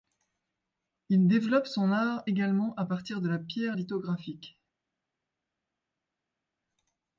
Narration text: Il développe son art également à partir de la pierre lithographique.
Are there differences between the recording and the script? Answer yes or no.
no